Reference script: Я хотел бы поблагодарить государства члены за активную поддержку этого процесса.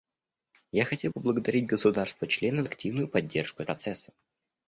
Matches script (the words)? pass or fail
fail